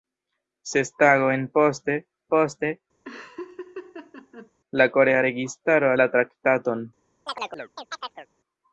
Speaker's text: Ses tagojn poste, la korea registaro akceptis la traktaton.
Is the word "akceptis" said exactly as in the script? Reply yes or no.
no